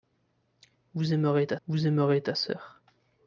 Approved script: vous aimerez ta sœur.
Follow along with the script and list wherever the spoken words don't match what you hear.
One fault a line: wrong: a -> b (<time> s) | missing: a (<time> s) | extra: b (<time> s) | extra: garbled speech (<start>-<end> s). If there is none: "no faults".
extra: vous aimerez ta (1.7 s)